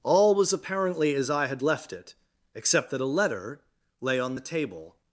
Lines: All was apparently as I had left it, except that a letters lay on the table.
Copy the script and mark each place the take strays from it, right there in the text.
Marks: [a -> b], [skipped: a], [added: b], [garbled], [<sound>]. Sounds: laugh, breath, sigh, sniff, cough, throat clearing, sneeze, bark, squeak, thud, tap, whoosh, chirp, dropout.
All was apparently as I had left it, except that a [letters -> letter] lay on the table.